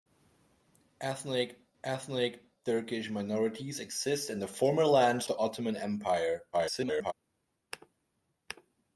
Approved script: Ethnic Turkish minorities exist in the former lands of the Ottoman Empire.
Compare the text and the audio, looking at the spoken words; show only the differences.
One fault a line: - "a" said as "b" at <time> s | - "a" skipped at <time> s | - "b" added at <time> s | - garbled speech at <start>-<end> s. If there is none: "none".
- "ethnic" added at 1.8 s
- "of" skipped at 5.3 s
- garbled speech at 6.5-7.1 s